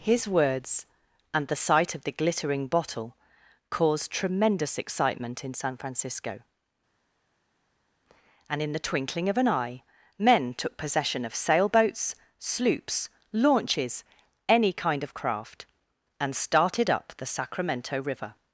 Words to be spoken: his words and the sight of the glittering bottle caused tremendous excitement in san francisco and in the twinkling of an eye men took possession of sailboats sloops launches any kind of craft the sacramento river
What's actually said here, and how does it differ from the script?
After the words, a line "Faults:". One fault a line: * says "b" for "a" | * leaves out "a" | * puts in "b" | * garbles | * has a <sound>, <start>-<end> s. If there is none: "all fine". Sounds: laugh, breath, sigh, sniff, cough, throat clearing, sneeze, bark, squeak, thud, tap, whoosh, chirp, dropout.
his words and the sight of the glittering bottle caused tremendous excitement in san francisco and in the twinkling of an eye men took possession of sailboats sloops launches any kind of craft and started up the sacramento river
Faults:
* puts in "and started up"